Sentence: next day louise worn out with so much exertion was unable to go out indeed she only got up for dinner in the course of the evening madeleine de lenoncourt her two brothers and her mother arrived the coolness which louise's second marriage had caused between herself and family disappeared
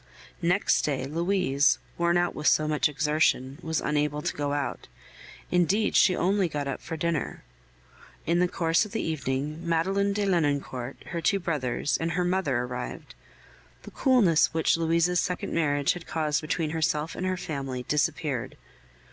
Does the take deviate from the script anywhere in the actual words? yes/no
yes